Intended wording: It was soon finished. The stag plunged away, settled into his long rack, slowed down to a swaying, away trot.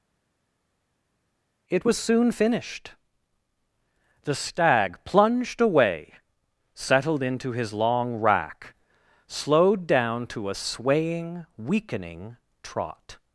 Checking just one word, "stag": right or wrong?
right